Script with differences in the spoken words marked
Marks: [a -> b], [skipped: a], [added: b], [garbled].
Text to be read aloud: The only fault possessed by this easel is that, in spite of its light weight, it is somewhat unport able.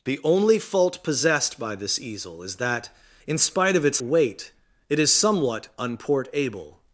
The only fault possessed by this easel is that, in spite of its [skipped: light] weight, it is somewhat unport able.